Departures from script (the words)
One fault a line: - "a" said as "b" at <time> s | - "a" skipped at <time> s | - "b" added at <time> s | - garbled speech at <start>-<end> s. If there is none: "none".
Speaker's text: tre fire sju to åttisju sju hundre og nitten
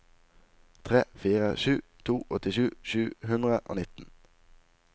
none